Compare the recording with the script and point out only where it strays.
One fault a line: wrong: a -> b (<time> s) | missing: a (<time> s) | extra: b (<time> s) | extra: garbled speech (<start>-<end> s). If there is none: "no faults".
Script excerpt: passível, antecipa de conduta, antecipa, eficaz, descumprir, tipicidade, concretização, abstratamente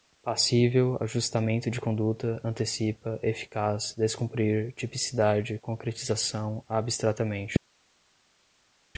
wrong: antecipa -> ajustamento (1.0 s)